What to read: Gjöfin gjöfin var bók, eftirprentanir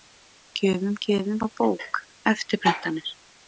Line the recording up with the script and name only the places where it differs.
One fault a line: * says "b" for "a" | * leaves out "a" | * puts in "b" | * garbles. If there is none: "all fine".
all fine